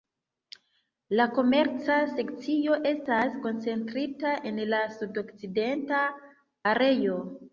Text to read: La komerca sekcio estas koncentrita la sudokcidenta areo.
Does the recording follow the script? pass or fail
fail